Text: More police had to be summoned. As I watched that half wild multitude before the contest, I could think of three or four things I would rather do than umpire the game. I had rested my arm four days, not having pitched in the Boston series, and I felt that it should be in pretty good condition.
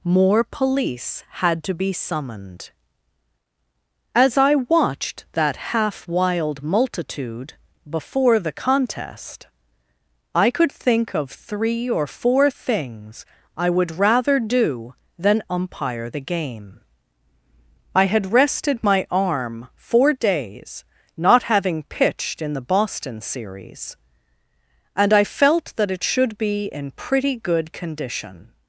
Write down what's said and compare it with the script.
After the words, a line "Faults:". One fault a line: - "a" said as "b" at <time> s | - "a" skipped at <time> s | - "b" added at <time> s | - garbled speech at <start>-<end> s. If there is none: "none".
More police had to be summoned. As I watched that half wild multitude before the contest, I could think of three or four things I would rather do than umpire the game. I had rested my arm four days, not having pitched in the Boston series, and I felt that it should be in pretty good condition.
Faults:
none